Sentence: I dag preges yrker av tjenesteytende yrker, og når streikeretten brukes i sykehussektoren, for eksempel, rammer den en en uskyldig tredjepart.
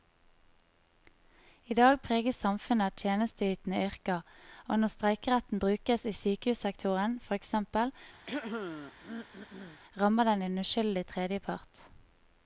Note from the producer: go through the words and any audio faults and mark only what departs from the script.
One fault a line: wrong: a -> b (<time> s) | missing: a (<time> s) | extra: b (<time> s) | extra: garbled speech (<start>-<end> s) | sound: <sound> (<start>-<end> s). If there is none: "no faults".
wrong: yrker -> samfunnet (2.5 s)
sound: throat clearing (8.3-9.8 s)
missing: en (10.7 s)